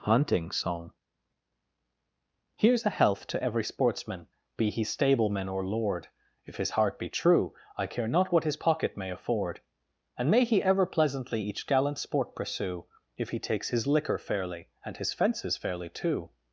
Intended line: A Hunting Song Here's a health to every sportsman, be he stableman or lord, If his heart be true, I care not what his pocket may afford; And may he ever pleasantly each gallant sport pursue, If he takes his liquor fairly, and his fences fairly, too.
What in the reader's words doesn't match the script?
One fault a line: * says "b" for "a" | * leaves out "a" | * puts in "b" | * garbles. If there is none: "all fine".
* leaves out "A"